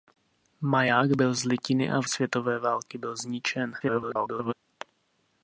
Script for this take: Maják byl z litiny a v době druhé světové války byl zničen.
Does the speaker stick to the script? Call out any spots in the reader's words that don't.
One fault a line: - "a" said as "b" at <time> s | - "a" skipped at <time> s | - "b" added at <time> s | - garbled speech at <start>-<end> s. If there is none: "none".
- "době druhé" skipped at 2.1 s
- garbled speech at 3.8-4.5 s